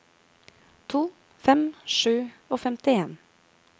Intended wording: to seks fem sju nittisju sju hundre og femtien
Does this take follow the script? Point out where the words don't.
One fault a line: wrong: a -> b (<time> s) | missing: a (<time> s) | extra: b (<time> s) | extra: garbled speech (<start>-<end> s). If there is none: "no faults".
missing: seks (1.0 s)
missing: nittisju sju hundre (2.1 s)